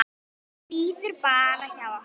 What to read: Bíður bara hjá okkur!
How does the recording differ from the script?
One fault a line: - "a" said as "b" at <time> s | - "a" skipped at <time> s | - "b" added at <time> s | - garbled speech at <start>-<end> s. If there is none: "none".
none